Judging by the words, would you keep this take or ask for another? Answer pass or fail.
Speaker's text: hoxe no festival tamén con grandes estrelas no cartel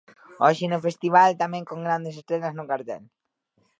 pass